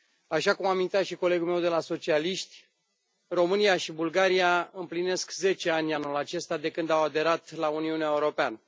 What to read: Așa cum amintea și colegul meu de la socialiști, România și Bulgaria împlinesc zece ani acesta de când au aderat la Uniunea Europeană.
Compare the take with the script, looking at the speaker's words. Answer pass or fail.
fail